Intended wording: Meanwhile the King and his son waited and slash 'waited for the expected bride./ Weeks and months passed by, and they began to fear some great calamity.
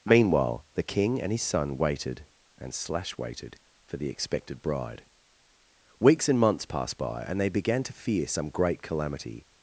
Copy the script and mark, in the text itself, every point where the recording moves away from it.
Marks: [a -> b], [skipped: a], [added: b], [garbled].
Meanwhile the King and his son waited and slash 'waited for the expected bride./ Weeks and months passed by, and they began to fear some great calamity.